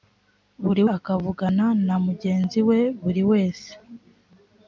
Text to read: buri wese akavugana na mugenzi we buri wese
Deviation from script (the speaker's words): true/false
true